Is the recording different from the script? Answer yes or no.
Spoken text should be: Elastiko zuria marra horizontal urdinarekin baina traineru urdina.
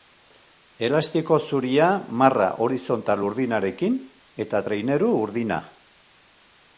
yes